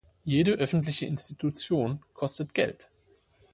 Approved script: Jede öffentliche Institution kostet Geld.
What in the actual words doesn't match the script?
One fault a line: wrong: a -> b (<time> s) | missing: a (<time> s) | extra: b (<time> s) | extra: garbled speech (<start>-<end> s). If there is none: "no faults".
no faults